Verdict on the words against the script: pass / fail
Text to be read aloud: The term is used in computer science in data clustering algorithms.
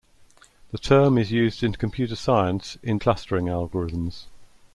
fail